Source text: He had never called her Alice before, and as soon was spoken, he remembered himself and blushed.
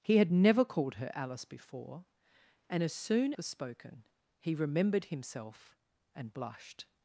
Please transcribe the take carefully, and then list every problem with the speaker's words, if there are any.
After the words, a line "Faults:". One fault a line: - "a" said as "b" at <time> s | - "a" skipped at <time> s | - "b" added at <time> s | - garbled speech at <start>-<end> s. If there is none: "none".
He had never called her Alice before, and as soon was spoken, he remembered himself and blushed.
Faults:
none